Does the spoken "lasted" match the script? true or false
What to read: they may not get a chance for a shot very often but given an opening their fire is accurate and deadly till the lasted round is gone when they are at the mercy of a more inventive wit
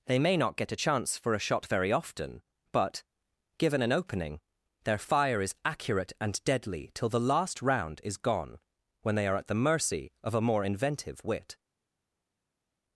false